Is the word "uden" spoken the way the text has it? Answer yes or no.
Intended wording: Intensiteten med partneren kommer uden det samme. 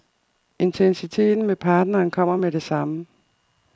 no